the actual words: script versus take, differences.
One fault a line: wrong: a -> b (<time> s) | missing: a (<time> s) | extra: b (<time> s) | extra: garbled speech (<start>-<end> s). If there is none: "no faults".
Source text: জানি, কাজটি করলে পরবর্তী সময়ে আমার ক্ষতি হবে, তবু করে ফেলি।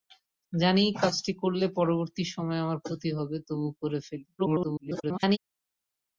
extra: garbled speech (4.4-5.4 s)